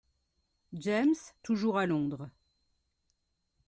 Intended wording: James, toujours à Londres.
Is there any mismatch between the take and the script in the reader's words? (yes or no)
no